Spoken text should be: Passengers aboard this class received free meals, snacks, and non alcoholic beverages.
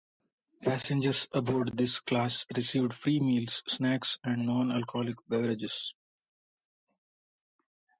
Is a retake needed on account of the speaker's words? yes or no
no